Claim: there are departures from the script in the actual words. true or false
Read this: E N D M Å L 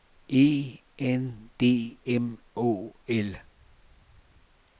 false